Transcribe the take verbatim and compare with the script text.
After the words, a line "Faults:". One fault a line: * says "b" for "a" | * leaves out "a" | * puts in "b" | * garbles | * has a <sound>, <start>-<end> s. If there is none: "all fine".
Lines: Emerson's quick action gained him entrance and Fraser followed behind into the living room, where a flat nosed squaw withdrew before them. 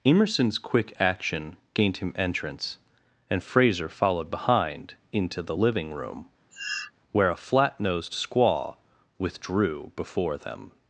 Emerson's quick action gained him entrance and Fraser followed behind into the living room, where a flat nosed squaw withdrew before them.
Faults:
* has a sniff, 6.5-6.9 s